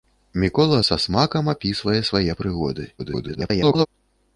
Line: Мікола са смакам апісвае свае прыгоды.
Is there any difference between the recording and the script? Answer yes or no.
yes